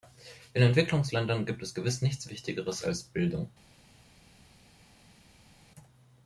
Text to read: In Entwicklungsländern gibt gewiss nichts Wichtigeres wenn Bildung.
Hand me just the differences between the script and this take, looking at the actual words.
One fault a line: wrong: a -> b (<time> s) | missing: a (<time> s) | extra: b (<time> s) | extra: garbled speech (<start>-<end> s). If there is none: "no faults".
extra: es (1.6 s)
wrong: wenn -> als (2.9 s)